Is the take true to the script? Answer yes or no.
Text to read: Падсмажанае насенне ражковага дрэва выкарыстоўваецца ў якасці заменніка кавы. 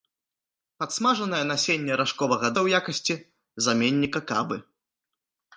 no